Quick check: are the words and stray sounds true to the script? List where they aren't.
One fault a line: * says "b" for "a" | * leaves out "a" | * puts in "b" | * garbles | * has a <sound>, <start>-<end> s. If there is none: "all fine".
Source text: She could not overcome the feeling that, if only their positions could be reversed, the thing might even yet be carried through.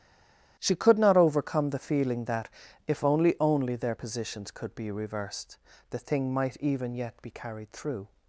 * puts in "only"